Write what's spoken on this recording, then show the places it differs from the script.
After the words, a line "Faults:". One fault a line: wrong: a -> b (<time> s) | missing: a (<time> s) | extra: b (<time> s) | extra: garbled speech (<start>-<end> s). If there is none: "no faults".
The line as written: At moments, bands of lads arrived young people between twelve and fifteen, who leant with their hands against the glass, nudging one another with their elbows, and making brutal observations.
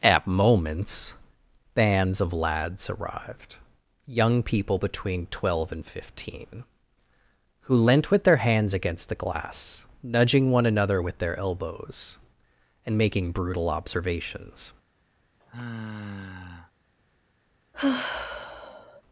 At moments, bands of lads arrived young people between twelve and fifteen, who leant with their hands against the glass, nudging one another with their elbows, and making brutal observations.
Faults:
no faults